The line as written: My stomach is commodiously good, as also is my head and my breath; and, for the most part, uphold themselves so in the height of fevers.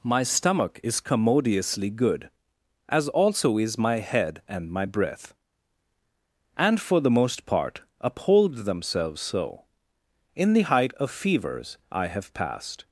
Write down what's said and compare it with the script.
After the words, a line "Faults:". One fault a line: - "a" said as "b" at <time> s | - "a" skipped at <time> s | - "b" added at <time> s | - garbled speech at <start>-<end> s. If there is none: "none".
My stomach is commodiously good, as also is my head and my breath; and, for the most part, uphold themselves so in the height of fevers. I have passed
Faults:
- "I have passed" added at 11.9 s